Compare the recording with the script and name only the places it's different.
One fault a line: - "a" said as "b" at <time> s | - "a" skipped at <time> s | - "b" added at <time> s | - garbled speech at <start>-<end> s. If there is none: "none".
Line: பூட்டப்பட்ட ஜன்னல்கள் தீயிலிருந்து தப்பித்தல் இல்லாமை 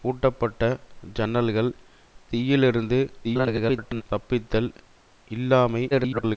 - garbled speech at 3.2-4.0 s
- garbled speech at 5.9-6.4 s